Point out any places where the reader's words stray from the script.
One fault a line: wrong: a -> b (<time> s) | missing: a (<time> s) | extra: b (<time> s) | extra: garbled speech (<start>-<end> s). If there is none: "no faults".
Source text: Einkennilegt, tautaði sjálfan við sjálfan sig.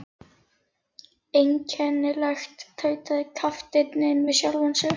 wrong: sjálfan -> kapteinninn (3.4 s)